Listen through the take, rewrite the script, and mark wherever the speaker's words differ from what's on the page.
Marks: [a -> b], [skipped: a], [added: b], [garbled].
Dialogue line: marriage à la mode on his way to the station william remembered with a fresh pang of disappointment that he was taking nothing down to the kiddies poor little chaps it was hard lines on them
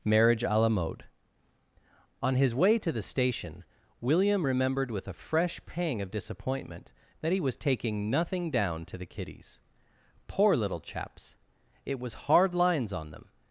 marriage à la mode on his way to the station william remembered with a fresh pang of disappointment that he was taking nothing down to the kiddies poor little chaps it was hard lines on them